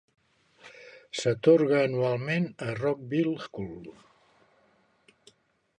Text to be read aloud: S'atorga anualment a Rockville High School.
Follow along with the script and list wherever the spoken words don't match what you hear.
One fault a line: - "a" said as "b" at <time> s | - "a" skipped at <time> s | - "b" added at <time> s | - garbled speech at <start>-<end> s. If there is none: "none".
- "High" skipped at 3.4 s